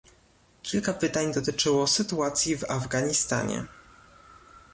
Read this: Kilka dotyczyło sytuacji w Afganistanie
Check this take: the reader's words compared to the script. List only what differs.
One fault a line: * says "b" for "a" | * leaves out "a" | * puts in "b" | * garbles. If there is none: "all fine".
* puts in "pytań"